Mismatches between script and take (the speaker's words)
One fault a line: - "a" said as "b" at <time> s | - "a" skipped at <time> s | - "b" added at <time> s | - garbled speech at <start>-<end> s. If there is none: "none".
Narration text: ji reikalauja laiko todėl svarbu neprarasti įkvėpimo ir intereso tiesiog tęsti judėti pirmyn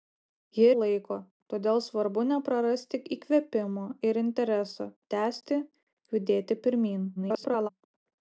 - "reikalauja" skipped at 0.6 s
- "tiesiog" skipped at 4.9 s
- garbled speech at 7.2-7.7 s